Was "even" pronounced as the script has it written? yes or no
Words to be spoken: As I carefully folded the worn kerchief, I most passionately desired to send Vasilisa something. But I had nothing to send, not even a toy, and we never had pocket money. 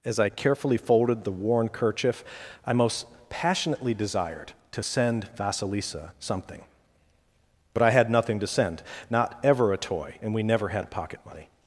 no